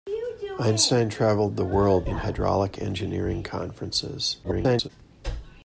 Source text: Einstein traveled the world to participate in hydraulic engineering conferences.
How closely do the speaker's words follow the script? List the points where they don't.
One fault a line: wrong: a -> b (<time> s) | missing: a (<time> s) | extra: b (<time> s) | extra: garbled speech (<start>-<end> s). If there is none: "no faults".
missing: to participate (2.1 s)
extra: garbled speech (4.4-4.9 s)